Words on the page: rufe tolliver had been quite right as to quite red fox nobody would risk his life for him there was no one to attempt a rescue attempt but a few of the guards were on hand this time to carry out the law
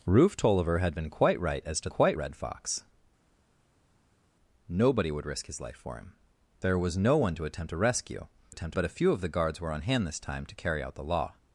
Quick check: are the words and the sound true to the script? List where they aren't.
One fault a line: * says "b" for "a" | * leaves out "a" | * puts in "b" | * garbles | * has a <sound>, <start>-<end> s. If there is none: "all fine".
all fine